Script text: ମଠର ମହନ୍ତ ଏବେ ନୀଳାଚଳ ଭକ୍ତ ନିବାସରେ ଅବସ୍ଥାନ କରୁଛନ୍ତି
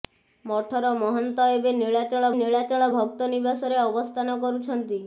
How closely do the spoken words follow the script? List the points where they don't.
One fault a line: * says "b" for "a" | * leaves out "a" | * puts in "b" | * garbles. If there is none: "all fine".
* puts in "ନୀଳାଚଳ"